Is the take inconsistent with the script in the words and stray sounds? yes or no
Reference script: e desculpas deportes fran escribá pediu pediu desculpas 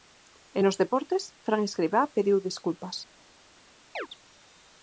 yes